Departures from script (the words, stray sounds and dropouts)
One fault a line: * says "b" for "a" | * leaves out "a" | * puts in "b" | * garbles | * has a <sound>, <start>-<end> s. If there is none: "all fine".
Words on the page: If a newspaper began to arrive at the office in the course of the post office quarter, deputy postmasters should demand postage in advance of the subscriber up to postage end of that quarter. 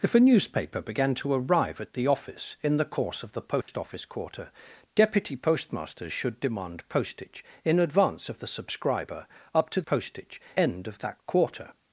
* has a dropout, 3.6-3.7 s